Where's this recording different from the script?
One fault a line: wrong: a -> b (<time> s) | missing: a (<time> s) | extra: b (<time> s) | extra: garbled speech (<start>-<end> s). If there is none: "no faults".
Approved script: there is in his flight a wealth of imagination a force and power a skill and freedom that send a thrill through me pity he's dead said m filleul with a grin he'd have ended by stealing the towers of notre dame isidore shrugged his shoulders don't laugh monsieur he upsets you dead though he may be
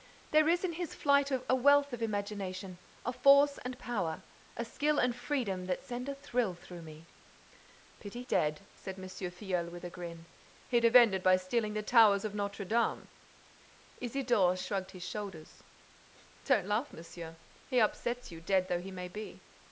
missing: he's (8.2 s)